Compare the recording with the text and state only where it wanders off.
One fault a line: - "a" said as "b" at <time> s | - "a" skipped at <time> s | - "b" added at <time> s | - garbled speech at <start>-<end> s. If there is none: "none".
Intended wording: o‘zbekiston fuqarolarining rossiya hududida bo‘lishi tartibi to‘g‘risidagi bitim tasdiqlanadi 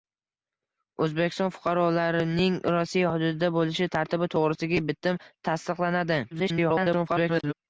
- garbled speech at 6.3-7.5 s